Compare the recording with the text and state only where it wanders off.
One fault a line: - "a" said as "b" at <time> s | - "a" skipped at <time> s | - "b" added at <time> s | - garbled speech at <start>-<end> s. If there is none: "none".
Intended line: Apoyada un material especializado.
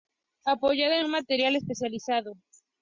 none